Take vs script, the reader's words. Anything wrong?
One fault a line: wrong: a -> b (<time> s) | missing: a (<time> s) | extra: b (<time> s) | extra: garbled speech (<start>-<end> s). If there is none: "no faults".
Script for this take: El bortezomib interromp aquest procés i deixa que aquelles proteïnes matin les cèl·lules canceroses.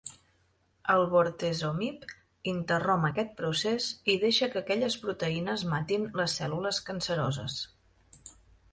no faults